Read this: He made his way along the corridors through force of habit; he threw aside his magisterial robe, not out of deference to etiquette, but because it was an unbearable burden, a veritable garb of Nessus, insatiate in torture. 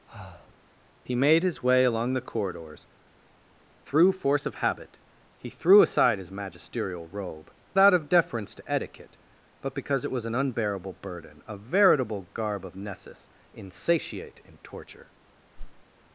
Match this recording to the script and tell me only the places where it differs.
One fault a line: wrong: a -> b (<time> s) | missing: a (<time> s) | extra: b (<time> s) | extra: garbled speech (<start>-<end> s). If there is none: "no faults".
missing: not (7.5 s)